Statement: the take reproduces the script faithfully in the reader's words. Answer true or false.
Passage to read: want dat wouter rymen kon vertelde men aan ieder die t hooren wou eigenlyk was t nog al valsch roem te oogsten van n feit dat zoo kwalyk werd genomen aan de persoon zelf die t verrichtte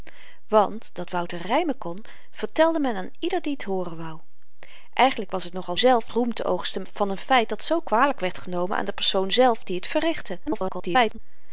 false